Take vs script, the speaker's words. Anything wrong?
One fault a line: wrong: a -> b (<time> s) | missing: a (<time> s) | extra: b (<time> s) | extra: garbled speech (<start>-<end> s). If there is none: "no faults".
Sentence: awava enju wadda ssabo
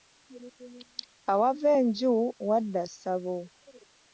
no faults